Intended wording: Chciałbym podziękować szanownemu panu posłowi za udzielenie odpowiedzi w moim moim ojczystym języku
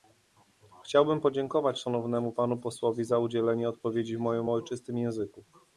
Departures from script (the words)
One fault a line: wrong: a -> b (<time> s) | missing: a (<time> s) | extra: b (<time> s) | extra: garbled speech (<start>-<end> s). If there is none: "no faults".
missing: moim (4.5 s)